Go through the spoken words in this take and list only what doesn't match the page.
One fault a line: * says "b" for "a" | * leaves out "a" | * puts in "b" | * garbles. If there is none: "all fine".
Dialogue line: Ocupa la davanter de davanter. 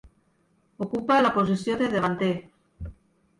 * says "posició" for "davanter"